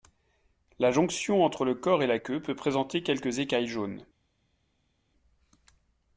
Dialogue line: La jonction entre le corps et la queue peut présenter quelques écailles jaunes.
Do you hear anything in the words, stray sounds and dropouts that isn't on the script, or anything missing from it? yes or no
no